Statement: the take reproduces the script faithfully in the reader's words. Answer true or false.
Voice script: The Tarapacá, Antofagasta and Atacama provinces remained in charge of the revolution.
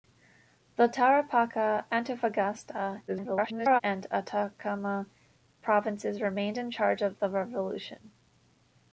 false